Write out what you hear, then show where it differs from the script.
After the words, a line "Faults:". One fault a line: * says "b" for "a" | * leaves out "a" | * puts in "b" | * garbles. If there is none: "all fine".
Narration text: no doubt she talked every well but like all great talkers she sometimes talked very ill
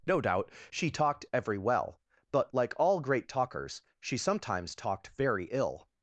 no doubt she talked every well but like all great talkers she sometimes talked very ill
Faults:
all fine